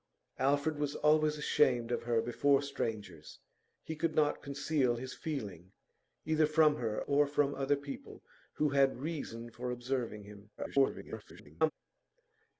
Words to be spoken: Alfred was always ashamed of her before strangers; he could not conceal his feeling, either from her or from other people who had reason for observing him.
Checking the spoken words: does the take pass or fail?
fail